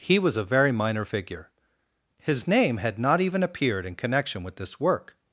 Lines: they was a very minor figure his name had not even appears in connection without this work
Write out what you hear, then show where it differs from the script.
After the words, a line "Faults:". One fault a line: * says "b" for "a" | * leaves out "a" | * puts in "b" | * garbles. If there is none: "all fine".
he was a very minor figure his name had not even appeared in connection with this work
Faults:
* says "he" for "they"
* says "appeared" for "appears"
* says "with" for "without"